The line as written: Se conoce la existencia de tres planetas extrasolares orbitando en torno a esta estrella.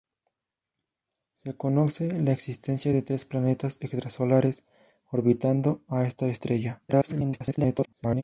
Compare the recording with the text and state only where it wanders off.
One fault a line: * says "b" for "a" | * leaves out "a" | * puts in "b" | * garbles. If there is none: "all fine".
* leaves out "en torno"
* garbles